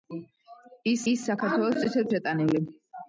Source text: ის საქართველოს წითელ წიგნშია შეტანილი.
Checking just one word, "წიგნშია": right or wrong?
wrong